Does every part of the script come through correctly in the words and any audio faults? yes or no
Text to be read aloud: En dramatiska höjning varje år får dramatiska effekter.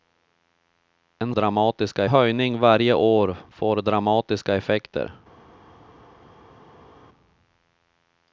yes